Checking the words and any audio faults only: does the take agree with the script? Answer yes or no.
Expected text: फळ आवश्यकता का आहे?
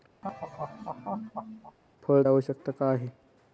no